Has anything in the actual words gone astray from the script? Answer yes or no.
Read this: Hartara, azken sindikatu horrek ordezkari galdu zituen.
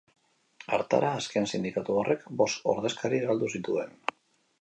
yes